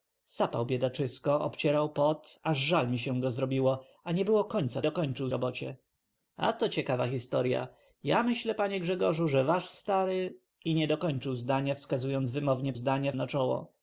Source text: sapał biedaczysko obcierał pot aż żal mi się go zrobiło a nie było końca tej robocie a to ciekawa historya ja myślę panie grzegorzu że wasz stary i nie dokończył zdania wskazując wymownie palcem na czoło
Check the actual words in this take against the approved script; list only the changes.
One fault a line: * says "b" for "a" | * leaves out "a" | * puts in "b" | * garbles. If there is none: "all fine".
* says "dokończył" for "tej"
* says "zdania" for "palcem"